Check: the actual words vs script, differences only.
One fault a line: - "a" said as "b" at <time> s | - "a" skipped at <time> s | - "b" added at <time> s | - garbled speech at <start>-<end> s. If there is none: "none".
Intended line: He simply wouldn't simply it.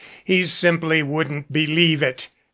- "simply" said as "believe" at 1.5 s